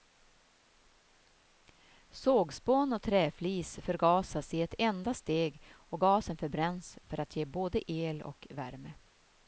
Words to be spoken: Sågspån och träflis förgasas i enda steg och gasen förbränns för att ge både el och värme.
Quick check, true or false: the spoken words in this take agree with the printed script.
false